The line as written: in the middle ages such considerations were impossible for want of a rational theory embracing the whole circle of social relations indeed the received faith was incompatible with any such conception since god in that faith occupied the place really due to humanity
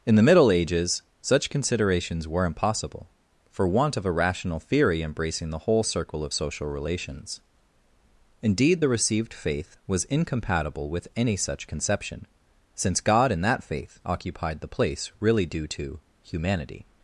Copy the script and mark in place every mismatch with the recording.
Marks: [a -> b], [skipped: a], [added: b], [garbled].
in the middle ages such considerations were impossible for want of a rational theory embracing the whole circle of social relations indeed the received faith was incompatible with any such conception since god in that faith occupied the place really due to humanity